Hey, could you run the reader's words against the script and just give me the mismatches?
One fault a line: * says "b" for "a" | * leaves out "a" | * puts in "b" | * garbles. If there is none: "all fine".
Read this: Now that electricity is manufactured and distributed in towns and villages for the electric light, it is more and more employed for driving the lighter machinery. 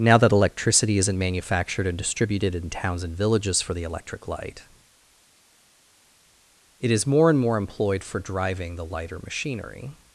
* says "isn't" for "is"